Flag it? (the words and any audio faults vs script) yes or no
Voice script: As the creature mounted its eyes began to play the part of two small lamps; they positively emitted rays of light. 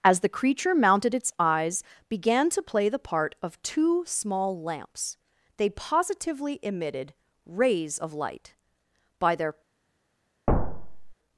yes